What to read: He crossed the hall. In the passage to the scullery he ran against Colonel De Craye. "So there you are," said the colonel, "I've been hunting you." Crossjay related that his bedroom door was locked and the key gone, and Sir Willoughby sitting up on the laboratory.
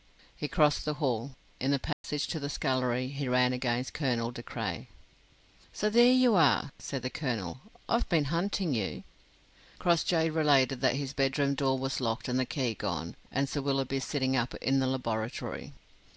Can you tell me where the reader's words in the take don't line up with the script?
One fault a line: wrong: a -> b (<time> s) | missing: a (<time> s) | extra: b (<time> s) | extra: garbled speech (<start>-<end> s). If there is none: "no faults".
wrong: on -> in (14.6 s)